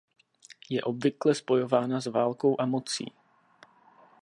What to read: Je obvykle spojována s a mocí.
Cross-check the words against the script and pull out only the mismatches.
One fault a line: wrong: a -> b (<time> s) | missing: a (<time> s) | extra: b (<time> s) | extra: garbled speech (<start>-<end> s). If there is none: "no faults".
extra: válkou (2.1 s)